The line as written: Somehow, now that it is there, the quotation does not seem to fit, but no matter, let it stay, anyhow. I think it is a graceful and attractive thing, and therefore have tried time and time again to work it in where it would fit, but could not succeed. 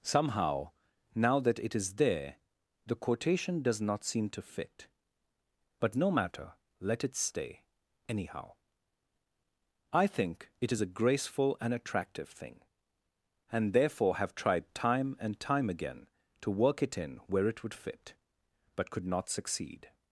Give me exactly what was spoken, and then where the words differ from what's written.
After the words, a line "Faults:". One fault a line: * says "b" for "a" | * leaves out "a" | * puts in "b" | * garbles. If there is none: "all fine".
Somehow, now that it is there, the quotation does not seem to fit, but no matter, let it stay, anyhow. I think it is a graceful and attractive thing, and therefore have tried time and time again to work it in where it would fit, but could not succeed.
Faults:
all fine